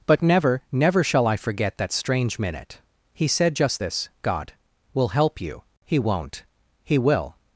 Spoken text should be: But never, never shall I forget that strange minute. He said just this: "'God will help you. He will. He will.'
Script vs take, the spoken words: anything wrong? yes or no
yes